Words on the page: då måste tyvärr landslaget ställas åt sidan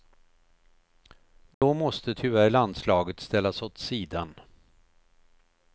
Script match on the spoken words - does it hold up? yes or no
yes